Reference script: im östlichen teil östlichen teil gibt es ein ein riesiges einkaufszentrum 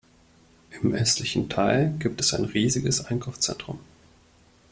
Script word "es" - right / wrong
right